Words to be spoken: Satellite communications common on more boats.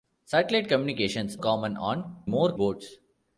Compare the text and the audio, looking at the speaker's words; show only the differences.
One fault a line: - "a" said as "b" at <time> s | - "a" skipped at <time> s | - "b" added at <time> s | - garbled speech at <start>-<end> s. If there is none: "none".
none